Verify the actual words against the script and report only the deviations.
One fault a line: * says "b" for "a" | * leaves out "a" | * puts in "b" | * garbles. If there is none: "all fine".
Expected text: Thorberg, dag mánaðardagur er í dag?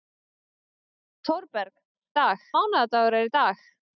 all fine